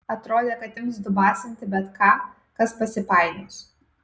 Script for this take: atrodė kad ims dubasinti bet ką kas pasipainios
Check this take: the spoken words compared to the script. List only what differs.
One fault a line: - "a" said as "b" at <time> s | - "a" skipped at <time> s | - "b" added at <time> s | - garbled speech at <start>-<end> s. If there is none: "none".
none